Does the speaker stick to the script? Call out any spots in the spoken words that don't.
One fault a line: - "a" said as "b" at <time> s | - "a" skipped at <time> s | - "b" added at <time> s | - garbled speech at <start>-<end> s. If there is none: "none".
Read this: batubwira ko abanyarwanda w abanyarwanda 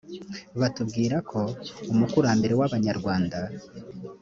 - "abanyarwanda" said as "umukurambere" at 1.9 s